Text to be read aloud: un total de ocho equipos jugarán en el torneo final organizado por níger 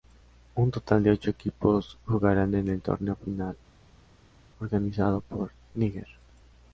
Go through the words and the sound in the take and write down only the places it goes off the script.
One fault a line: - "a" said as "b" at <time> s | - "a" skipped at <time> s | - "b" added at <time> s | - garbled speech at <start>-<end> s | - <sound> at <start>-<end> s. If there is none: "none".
none